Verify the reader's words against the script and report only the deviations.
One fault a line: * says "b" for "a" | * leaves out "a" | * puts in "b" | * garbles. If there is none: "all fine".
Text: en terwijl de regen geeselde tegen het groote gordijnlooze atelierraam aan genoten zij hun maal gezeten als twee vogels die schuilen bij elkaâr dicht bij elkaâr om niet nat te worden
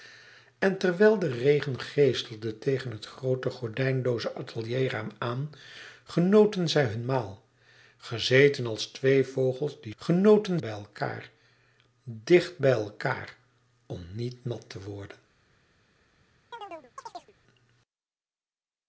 * says "genoten" for "schuilen"